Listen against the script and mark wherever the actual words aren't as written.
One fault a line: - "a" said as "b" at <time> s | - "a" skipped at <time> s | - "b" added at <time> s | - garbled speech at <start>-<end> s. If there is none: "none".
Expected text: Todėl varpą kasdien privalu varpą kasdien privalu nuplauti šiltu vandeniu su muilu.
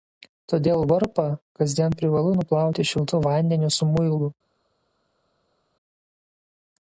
- "varpą kasdien privalu" skipped at 2.3 s